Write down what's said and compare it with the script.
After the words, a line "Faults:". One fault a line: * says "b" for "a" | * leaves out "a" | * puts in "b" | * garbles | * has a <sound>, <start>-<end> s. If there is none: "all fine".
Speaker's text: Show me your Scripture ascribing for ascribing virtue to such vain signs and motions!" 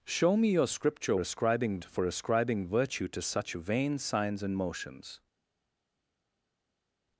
Show me your Scripture ascribing for ascribing virtue to such vain signs and motions!"
Faults:
all fine